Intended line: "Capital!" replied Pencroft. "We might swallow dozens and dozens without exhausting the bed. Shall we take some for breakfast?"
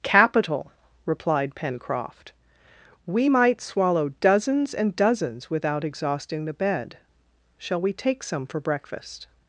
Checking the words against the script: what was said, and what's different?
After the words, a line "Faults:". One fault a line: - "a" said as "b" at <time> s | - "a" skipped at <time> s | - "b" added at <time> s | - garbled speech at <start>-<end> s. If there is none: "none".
"Capital!" replied Pencroft. "We might swallow dozens and dozens without exhausting the bed. Shall we take some for breakfast?"
Faults:
none